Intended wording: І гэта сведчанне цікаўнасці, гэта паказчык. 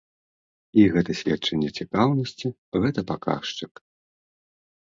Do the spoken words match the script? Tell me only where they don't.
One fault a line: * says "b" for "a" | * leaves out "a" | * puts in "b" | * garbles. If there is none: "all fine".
all fine